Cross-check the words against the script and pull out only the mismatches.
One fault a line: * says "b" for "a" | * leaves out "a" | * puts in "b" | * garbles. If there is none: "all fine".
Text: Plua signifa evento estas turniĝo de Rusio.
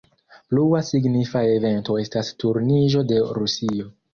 all fine